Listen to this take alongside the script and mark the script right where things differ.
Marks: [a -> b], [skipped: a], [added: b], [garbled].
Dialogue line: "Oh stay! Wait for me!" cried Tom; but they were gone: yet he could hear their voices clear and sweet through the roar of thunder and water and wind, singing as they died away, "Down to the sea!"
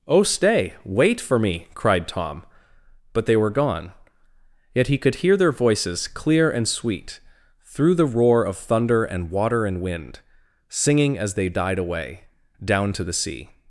"Oh stay! Wait for me!" cried Tom; but they were gone: yet he could hear their voices clear and sweet through the roar of thunder and water and wind, singing as they died away, "Down to the sea!"